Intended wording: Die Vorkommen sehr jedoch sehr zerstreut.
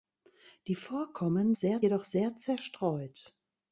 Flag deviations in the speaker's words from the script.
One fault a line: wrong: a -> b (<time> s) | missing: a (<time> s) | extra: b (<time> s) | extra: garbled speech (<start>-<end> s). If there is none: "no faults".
no faults